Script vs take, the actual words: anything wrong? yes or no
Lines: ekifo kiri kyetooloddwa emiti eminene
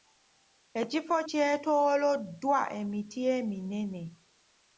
yes